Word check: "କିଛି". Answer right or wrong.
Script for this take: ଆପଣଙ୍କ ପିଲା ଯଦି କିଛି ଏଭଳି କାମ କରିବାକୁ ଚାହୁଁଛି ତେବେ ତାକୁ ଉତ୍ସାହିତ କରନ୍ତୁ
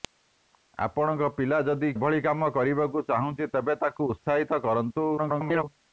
wrong